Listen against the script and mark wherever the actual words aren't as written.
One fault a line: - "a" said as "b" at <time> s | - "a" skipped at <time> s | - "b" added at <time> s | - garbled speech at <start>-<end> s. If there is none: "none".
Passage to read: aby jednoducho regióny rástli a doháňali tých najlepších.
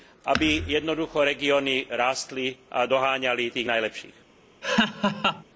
none